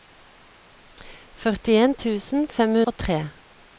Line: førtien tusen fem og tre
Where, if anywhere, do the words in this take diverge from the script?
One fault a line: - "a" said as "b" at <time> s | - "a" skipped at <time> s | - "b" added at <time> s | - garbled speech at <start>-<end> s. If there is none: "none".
none